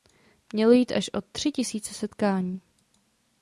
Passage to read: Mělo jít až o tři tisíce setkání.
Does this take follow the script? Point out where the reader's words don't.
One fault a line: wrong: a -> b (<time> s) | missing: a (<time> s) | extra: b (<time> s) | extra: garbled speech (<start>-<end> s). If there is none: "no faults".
no faults